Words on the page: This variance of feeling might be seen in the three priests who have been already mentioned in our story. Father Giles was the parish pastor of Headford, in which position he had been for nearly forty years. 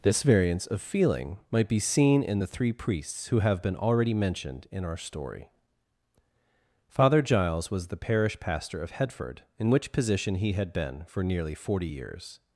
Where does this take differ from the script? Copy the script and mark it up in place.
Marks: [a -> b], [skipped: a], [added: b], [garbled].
This variance of feeling might be seen in the three priests who have been already mentioned in our story. Father Giles was the parish pastor of Headford, in which position he had been for nearly forty years.